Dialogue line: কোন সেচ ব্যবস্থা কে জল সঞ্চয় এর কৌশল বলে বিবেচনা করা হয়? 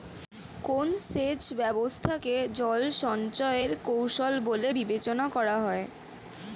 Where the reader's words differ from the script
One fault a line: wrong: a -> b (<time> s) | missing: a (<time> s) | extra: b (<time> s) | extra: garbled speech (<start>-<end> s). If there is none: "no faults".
no faults